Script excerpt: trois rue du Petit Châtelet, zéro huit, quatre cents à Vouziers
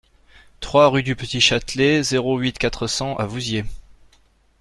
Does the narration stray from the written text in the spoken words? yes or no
no